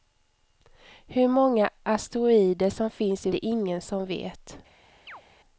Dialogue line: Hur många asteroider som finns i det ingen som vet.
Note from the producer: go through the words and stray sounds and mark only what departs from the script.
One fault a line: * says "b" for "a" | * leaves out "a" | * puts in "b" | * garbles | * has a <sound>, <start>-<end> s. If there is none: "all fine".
* has a chirp, 5.1-5.2 s